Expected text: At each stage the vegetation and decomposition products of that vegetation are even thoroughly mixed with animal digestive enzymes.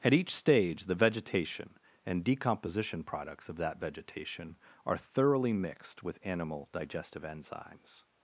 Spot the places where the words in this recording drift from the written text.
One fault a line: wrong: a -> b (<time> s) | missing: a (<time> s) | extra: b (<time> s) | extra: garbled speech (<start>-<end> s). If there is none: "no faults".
missing: even (5.0 s)